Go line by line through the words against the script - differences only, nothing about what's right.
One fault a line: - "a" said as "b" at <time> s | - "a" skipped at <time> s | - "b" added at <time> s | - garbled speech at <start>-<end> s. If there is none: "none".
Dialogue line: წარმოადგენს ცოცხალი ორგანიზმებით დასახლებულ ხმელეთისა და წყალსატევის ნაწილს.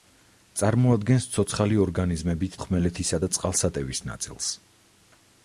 - "დასახლებულ" skipped at 2.6 s